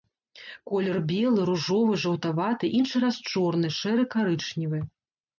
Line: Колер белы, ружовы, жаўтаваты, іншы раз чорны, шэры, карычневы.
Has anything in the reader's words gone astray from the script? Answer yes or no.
no